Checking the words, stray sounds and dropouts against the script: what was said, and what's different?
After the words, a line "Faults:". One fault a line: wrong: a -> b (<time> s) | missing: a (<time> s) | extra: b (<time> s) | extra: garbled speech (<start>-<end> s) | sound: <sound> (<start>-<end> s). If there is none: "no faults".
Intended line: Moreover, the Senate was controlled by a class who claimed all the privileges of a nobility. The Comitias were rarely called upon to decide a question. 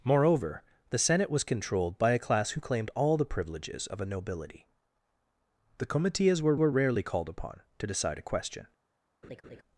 Moreover, the Senate was controlled by a class who claimed all the privileges of a nobility. The Comitias were were rarely called upon to decide a question.
Faults:
extra: were (6.6 s)
sound: laugh (9.2-9.6 s)